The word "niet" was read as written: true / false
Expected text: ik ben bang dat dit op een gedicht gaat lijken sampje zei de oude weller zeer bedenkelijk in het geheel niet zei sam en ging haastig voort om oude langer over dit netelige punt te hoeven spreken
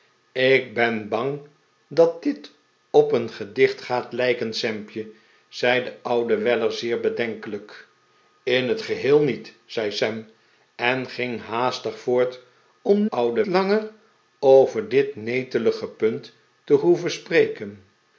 true